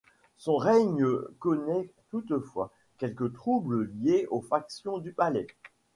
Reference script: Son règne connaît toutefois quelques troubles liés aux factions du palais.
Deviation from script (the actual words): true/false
false